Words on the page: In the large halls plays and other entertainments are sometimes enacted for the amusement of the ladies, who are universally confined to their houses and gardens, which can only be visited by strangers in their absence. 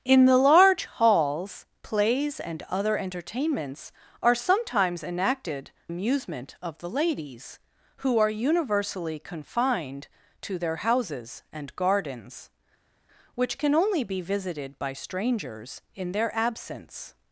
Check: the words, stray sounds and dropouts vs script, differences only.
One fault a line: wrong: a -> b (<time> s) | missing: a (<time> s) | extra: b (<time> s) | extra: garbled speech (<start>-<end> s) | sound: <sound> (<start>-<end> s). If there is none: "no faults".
missing: for the (5.7 s)